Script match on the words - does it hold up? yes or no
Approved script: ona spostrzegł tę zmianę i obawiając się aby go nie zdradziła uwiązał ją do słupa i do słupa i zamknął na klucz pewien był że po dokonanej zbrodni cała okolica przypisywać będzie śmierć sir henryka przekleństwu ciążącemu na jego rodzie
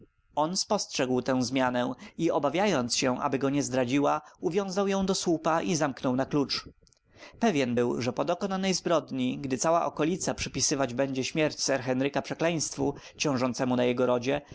no